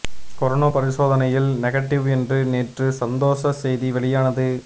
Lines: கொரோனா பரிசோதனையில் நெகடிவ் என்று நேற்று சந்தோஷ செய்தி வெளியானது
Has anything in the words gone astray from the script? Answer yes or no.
no